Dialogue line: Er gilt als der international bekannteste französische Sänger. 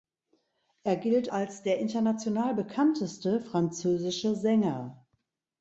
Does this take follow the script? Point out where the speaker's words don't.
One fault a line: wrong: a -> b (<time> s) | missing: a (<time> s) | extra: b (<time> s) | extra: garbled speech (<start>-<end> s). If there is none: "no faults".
no faults